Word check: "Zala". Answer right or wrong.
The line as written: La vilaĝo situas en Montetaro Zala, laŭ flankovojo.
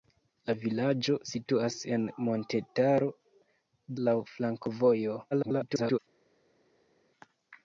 wrong